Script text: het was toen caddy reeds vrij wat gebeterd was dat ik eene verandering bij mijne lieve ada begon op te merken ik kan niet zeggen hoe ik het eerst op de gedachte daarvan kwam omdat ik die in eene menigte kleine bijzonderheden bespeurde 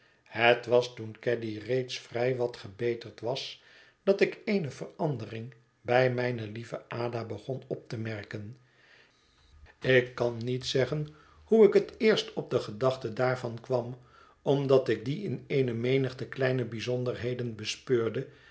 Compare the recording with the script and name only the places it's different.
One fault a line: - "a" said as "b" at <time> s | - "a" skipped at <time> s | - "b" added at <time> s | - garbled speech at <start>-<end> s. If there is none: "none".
none